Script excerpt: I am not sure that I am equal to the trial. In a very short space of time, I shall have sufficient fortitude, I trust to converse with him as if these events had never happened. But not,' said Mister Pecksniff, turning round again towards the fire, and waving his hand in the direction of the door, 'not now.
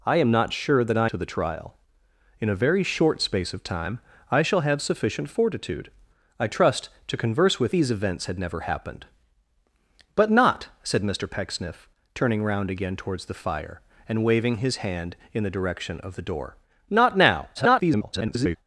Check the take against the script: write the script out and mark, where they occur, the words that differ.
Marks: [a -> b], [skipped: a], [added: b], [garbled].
I am not sure that I [skipped: am equal] to the trial. In a very short space of time, I shall have sufficient fortitude, I trust to converse with [skipped: him as if] these events had never happened. But not,' said Mister Pecksniff, turning round again towards the fire, and waving his hand in the direction of the door, 'not now. [garbled]